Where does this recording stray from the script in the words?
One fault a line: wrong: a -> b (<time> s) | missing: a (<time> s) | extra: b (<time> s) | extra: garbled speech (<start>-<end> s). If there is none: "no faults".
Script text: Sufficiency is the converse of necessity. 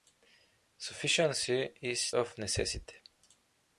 missing: the converse (2.1 s)